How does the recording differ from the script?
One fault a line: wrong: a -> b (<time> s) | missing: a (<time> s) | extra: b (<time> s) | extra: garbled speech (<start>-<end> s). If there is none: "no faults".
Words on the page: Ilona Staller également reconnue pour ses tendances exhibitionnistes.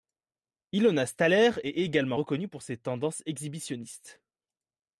extra: est (1.6 s)